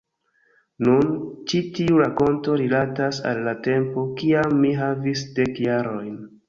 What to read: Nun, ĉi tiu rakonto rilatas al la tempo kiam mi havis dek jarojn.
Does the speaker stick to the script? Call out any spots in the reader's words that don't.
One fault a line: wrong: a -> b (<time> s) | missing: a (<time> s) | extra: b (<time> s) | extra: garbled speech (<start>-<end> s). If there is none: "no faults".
no faults